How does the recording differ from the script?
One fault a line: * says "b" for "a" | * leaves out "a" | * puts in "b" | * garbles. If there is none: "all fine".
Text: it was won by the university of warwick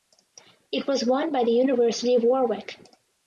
all fine